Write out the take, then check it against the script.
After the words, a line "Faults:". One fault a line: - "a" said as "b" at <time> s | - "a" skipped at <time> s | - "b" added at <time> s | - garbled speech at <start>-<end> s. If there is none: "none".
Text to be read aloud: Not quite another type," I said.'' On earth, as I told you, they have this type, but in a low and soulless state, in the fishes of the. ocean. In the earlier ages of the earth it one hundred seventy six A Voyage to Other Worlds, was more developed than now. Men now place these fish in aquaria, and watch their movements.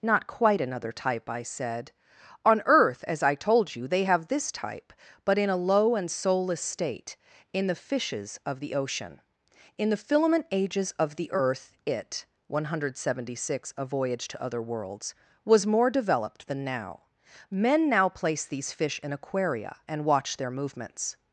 Not quite another type," I said.'' On earth, as I told you, they have this type, but in a low and soulless state, in the fishes of the. ocean. In the filament ages of the earth it one hundred seventy six A Voyage to Other Worlds, was more developed than now. Men now place these fish in aquaria, and watch their movements.
Faults:
- "earlier" said as "filament" at 10.0 s